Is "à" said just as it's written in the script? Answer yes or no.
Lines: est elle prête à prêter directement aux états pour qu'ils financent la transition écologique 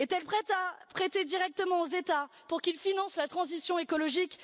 yes